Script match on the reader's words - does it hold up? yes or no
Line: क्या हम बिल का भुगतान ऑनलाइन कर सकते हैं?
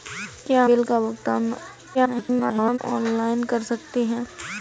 no